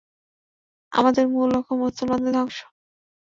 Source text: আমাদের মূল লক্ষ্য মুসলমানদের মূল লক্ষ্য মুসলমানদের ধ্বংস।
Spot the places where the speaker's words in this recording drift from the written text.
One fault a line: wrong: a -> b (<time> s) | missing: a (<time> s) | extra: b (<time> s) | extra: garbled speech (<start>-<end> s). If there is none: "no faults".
missing: মূল লক্ষ্য মুসলমানদের (2.3 s)